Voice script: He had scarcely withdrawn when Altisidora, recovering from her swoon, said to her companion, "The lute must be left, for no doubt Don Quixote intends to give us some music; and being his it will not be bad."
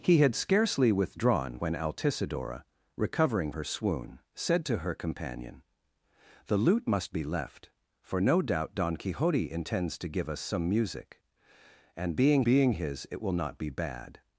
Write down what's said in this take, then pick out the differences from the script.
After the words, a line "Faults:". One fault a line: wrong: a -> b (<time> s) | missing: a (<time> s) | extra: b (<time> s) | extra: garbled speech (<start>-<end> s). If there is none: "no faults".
He had scarcely withdrawn when Altisidora, recovering her swoon, said to her companion, "The lute must be left, for no doubt Don Quixote intends to give us some music; and being being his it will not be bad."
Faults:
missing: from (3.5 s)
extra: being (12.4 s)